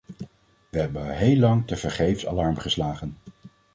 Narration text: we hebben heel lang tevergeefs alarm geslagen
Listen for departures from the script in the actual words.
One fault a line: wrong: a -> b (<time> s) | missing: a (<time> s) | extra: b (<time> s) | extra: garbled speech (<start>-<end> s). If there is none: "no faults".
no faults